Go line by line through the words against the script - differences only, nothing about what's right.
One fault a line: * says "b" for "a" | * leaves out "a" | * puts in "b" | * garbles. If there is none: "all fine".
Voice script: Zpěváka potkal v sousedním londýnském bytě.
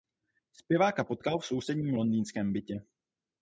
all fine